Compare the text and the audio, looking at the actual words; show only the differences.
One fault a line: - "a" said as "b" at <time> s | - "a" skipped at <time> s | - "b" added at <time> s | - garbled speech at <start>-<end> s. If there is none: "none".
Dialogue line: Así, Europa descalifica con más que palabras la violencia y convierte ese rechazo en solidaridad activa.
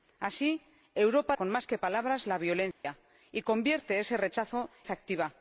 - "descalifica" skipped at 1.4 s
- "en solidaridad" skipped at 4.7 s